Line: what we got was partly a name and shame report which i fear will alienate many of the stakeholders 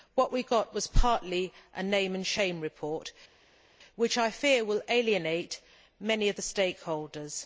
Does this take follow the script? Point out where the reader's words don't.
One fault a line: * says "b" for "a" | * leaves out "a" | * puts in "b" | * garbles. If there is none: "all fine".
all fine